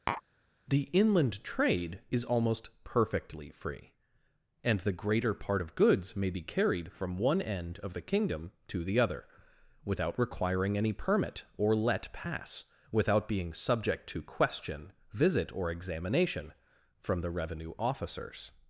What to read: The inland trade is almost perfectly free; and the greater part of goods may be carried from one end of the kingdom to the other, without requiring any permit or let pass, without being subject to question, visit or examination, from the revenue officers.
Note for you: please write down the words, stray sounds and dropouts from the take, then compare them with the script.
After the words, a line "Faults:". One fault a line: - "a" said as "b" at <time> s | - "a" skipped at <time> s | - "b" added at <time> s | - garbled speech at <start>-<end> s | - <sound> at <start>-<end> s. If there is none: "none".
The inland trade is almost perfectly free; and the greater part of goods may be carried from one end of the kingdom to the other, without requiring any permit or let pass, without being subject to question, visit or examination, from the revenue officers.
Faults:
- tap at 0.1-0.2 s